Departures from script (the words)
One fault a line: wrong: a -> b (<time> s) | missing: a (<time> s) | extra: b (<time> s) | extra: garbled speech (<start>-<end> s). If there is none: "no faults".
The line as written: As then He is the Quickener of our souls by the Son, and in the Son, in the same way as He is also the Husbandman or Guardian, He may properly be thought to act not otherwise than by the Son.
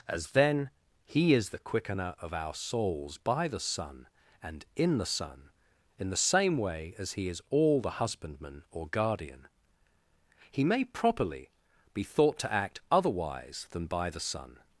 wrong: also -> all (7.5 s)
missing: not (12.8 s)